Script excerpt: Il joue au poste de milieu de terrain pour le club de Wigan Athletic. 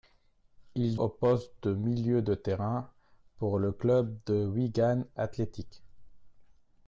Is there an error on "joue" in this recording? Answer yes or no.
yes